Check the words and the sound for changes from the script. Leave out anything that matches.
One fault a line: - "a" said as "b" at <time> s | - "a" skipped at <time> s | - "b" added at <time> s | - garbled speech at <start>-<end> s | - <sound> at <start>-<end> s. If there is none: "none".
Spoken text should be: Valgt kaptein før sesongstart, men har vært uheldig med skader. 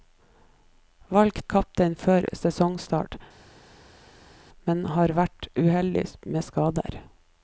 none